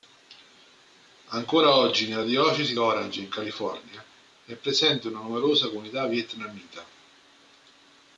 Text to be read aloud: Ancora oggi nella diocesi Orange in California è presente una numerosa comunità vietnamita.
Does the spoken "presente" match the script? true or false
true